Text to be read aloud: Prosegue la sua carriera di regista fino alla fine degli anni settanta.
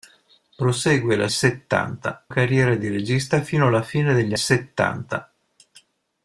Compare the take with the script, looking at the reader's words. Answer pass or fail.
fail